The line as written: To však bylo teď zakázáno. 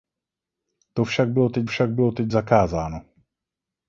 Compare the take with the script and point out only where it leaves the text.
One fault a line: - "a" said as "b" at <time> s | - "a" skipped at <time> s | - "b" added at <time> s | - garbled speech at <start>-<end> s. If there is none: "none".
- "však bylo teď" added at 1.6 s